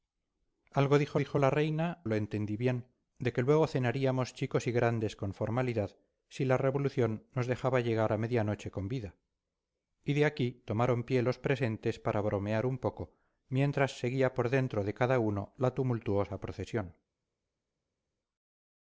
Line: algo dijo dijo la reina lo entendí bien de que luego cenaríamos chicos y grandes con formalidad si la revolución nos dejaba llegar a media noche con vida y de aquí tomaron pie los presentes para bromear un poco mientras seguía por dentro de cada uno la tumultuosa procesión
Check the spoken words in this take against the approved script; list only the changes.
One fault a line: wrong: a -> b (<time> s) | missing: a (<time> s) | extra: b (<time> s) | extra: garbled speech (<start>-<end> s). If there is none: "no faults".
no faults